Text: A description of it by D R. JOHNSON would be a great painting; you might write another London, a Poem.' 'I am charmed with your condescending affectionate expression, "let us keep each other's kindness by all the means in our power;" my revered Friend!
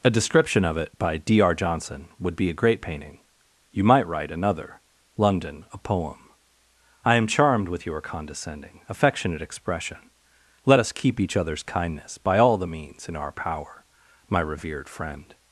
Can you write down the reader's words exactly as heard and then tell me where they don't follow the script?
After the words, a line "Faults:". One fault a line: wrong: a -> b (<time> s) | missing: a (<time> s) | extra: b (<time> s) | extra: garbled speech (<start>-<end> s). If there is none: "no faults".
A description of it by D R. JOHNSON would be a great painting; you might write another London, a Poem.' 'I am charmed with your condescending affectionate expression, "let us keep each other's kindness by all the means in our power;" my revered Friend!
Faults:
no faults